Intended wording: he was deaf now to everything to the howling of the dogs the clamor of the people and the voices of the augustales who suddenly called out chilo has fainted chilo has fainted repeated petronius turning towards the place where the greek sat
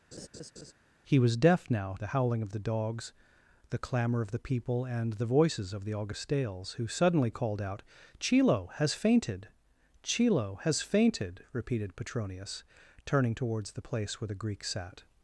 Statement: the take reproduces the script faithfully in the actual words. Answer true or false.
false